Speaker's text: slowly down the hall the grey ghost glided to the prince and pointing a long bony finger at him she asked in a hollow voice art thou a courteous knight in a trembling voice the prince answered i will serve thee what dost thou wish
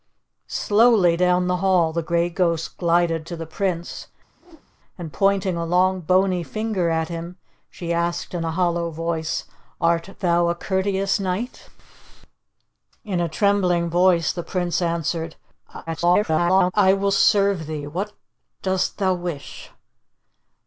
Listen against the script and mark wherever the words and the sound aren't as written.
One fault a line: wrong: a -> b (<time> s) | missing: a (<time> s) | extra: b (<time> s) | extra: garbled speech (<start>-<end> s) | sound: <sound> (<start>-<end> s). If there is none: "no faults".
sound: whoosh (4.3-4.7 s)
extra: garbled speech (15.9-16.7 s)